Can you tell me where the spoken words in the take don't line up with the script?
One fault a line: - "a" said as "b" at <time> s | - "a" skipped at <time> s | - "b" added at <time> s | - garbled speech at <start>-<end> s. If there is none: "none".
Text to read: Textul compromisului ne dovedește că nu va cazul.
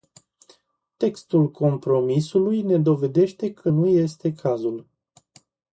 - "va" said as "este" at 3.9 s